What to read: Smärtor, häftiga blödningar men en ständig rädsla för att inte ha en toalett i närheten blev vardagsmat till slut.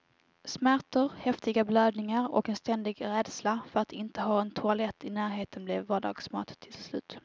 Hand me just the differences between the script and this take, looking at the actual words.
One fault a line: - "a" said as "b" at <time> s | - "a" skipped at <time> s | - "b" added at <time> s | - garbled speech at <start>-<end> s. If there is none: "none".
- "men" said as "och" at 2.3 s